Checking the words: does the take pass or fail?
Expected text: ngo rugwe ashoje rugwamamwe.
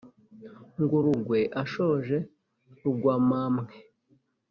pass